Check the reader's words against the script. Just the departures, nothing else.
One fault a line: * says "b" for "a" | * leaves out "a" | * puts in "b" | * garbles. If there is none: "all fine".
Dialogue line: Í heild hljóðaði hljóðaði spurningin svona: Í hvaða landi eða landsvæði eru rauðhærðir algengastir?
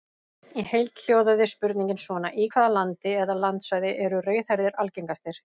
* leaves out "hljóðaði"